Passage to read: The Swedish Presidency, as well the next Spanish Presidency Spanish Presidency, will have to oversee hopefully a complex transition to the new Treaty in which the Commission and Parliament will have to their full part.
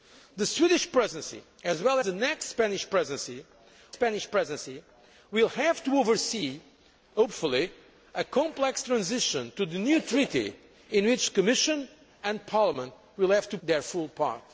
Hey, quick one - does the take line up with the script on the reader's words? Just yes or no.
yes